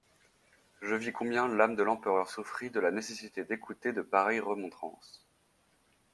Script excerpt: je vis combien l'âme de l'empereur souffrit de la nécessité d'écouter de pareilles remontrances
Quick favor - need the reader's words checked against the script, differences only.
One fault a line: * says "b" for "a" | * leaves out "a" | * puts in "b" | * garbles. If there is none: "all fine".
all fine